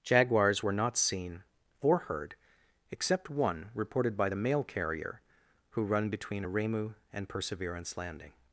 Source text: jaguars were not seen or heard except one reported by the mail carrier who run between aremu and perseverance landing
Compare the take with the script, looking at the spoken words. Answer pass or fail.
pass